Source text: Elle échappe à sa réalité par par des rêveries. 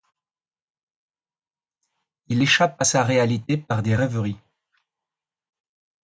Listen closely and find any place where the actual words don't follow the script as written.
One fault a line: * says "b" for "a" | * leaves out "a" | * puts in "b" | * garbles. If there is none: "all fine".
* says "Il" for "Elle"
* leaves out "par"